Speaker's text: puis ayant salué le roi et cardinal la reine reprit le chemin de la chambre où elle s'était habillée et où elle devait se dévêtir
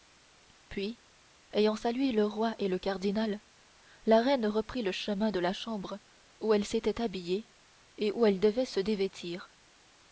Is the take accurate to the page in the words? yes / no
no